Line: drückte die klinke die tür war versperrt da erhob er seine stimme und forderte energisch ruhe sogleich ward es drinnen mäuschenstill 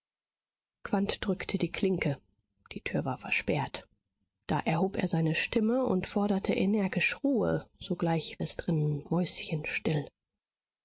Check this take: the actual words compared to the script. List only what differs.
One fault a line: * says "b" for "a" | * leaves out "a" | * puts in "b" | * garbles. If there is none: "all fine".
* leaves out "ward"